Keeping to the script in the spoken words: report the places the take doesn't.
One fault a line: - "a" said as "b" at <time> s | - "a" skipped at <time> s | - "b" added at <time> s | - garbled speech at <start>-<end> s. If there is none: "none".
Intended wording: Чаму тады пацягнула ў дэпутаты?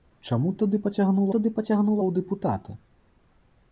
- "тады пацягнула" added at 1.3 s